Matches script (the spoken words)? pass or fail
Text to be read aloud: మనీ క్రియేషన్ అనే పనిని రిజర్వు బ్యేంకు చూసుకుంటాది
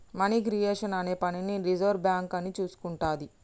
fail